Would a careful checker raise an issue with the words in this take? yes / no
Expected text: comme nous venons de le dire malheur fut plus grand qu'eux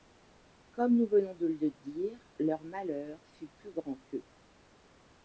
yes